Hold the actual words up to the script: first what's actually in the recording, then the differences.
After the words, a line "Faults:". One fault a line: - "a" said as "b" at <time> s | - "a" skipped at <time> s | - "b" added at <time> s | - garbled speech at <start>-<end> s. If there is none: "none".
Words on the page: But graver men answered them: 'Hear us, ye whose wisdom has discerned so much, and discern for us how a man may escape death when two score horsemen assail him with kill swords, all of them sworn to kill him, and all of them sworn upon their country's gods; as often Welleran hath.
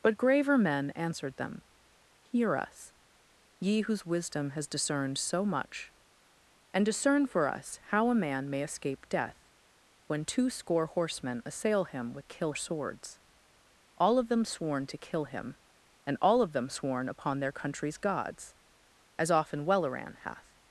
But graver men answered them: 'Hear us, ye whose wisdom has discerned so much, and discern for us how a man may escape death when two score horsemen assail him with kill swords, all of them sworn to kill him, and all of them sworn upon their country's gods; as often Welleran hath.
Faults:
none